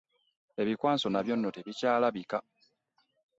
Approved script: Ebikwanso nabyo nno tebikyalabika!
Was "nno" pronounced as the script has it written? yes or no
yes